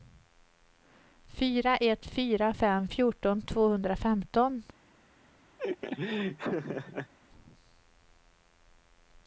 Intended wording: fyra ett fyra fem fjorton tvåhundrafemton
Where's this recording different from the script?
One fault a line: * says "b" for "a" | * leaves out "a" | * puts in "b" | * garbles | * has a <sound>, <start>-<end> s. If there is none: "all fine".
* has a laugh, 5.6-7.1 s